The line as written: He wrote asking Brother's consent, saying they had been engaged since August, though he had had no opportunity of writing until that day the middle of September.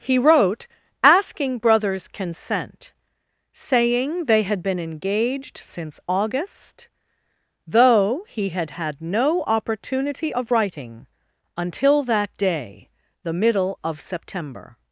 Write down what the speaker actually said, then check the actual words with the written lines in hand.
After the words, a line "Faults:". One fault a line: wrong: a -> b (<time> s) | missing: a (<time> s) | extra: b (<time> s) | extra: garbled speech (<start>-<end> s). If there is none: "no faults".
He wrote asking Brother's consent, saying they had been engaged since August, though he had had no opportunity of writing until that day the middle of September.
Faults:
no faults